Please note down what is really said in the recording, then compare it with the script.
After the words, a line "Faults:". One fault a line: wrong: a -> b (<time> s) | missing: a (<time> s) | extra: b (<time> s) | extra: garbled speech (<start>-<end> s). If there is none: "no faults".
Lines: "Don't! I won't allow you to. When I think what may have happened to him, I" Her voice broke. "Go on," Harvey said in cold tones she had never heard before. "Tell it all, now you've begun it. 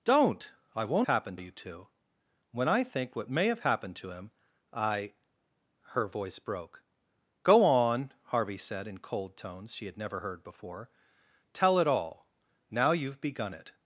"Don't! I won't happened you to. When I think what may have happened to him, I" Her voice broke. "Go on," Harvey said in cold tones she had never heard before. "Tell it all, now you've begun it.
Faults:
wrong: allow -> happened (1.0 s)